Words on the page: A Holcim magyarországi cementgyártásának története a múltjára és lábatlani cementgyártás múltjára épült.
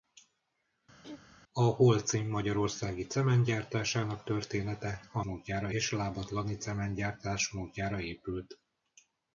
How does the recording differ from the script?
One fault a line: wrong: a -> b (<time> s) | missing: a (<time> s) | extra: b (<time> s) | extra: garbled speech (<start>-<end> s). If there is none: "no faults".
no faults